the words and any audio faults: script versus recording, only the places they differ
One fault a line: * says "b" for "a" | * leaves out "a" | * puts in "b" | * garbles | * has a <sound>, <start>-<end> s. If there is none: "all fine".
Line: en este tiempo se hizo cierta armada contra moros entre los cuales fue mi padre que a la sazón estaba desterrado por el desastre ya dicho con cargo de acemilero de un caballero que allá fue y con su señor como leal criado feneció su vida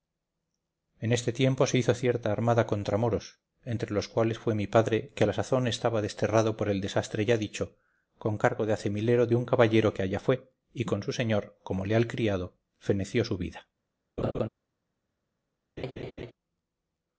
* has a laugh, 14.2-14.5 s
* has a laugh, 15.8-16.3 s